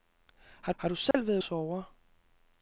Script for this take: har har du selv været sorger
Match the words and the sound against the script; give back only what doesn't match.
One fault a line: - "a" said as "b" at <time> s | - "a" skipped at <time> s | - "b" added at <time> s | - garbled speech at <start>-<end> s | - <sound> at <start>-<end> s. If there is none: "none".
- dropout at 1.1-1.1 s